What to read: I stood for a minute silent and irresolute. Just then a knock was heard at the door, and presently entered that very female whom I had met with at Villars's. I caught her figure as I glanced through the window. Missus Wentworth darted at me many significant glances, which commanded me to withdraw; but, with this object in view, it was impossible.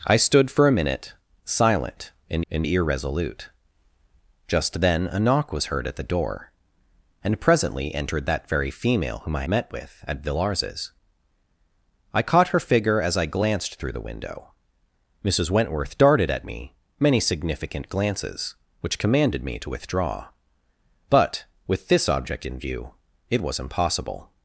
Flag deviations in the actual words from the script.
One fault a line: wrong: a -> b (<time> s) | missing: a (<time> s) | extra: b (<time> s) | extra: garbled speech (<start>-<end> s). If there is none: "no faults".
extra: and (2.5 s)
missing: had (9.5 s)